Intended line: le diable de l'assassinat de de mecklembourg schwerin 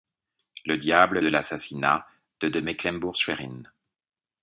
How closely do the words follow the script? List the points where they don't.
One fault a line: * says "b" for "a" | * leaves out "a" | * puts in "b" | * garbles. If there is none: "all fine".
all fine